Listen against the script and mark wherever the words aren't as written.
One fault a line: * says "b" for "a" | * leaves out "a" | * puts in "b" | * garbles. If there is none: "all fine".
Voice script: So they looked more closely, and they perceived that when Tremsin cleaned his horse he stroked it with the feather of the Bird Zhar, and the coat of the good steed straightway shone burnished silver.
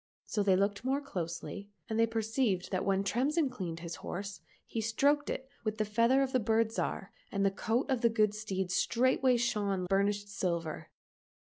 all fine